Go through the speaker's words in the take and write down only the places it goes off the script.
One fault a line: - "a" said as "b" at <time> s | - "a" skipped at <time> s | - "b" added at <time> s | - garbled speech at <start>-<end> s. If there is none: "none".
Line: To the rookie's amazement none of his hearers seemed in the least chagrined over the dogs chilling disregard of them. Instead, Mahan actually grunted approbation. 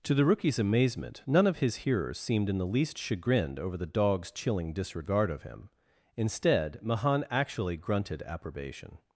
- "them" said as "him" at 5.4 s